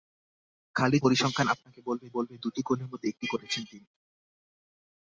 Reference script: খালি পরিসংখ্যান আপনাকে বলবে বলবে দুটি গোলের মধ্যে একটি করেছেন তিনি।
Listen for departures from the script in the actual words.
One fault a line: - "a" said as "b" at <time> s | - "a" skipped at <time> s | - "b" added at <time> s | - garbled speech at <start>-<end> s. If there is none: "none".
none